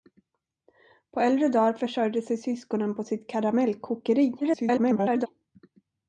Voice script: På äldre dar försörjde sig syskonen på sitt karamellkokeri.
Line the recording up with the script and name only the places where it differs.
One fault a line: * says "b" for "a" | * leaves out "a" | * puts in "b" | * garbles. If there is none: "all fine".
* garbles